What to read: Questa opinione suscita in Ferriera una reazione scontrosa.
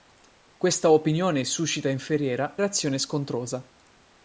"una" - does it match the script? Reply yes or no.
no